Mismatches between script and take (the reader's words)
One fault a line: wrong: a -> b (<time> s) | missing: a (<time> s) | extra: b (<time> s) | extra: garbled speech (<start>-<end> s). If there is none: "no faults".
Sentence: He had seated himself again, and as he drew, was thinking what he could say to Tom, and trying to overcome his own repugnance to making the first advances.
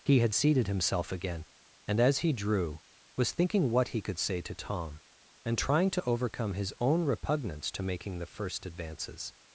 no faults